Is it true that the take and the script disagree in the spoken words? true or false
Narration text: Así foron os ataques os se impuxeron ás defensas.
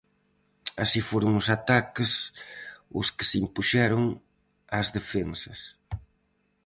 true